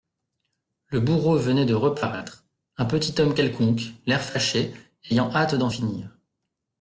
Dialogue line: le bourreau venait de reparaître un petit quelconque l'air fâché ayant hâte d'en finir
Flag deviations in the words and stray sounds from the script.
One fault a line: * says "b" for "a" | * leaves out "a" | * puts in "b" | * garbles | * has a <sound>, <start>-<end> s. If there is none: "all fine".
* puts in "homme"